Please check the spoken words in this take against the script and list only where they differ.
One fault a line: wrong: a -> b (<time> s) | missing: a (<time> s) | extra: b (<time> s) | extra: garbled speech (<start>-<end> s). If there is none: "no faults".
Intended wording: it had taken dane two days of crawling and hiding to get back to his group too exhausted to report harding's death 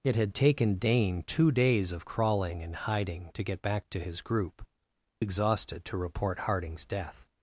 missing: too (4.7 s)